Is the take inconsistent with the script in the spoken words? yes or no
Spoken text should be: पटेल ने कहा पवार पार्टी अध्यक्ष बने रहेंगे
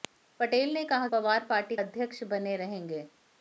no